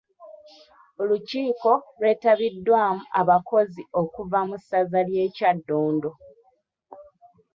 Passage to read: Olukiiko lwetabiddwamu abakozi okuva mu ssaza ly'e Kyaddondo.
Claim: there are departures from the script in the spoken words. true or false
false